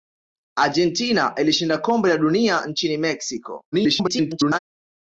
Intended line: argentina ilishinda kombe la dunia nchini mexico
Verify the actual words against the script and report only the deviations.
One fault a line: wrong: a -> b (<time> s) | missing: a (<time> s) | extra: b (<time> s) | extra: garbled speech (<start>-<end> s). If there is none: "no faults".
extra: garbled speech (3.7-4.6 s)